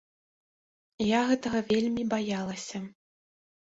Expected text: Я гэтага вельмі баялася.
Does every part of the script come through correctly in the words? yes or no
yes